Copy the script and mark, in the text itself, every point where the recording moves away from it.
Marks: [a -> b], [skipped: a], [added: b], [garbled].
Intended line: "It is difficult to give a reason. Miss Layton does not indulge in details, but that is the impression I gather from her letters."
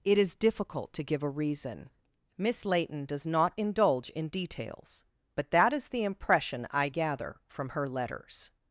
"It is difficult to give a reason. Miss Layton does not indulge in details, but that is the impression I gather from her letters."